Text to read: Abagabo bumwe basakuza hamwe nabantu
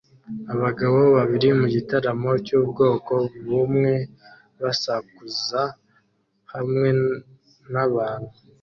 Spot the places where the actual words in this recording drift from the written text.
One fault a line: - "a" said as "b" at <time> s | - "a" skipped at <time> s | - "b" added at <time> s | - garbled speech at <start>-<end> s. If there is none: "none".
- "babiri mugitaramo cyubwoko" added at 1.1 s